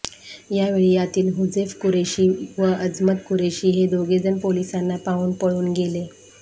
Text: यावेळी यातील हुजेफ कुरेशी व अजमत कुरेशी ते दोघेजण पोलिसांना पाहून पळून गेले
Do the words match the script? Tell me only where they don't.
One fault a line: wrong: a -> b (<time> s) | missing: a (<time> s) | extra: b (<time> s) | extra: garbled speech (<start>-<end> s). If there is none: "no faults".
wrong: ते -> हे (3.7 s)